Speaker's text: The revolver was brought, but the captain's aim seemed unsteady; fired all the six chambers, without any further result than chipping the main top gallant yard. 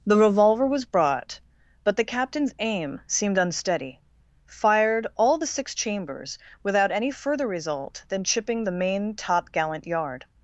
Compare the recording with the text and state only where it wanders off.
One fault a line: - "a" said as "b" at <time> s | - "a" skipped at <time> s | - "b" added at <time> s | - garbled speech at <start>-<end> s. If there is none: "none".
none